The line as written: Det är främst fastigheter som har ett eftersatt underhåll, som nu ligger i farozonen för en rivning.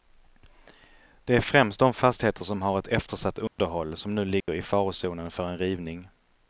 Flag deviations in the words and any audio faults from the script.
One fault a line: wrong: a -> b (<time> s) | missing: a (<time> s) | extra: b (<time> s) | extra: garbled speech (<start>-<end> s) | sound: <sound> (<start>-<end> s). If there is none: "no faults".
extra: de (1.8 s)
sound: dropout (3.5-3.6 s)
sound: dropout (4.4-4.5 s)